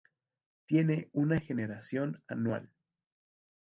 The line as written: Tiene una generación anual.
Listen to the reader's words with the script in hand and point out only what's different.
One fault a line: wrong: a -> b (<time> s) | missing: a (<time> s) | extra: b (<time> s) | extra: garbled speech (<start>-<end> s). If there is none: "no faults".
no faults